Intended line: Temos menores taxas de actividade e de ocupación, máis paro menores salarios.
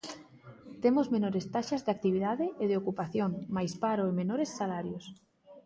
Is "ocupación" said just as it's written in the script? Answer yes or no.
yes